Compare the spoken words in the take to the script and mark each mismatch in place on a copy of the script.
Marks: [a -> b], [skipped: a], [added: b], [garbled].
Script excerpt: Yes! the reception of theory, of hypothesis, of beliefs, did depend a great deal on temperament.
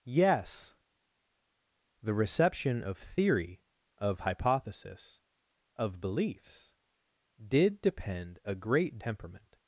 Yes! the reception of theory, of hypothesis, of beliefs, did depend a great [skipped: deal on] temperament.